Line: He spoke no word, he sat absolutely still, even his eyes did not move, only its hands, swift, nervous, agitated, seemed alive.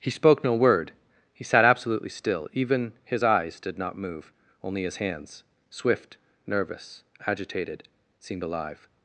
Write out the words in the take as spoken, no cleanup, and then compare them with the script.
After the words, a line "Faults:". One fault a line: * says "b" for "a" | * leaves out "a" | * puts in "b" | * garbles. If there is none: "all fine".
He spoke no word, he sat absolutely still, even his eyes did not move, only his hands, swift, nervous, agitated, seemed alive.
Faults:
* says "his" for "its"